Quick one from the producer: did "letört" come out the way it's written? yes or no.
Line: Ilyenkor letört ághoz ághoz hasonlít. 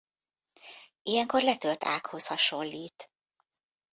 yes